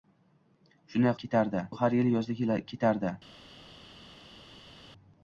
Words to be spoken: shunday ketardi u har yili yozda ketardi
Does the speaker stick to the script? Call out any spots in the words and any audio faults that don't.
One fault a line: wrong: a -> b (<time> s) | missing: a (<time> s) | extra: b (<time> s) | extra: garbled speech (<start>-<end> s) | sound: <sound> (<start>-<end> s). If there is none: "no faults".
no faults